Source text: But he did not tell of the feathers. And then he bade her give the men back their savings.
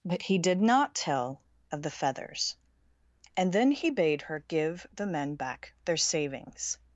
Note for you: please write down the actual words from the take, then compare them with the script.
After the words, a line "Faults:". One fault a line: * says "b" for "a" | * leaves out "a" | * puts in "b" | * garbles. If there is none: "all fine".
But he did not tell of the feathers. And then he bade her give the men back their savings.
Faults:
all fine